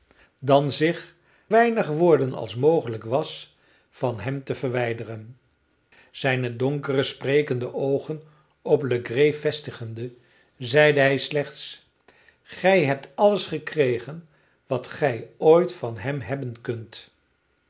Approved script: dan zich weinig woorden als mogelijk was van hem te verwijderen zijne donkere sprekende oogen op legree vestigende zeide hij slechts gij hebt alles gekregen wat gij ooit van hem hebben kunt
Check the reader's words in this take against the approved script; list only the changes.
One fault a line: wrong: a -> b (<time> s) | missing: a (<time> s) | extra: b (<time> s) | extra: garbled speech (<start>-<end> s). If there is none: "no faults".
no faults